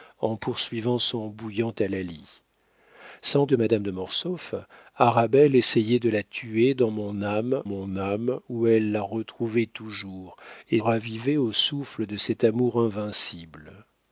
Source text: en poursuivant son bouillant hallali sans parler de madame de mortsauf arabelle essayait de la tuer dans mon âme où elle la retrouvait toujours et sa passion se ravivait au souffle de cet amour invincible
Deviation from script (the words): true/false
true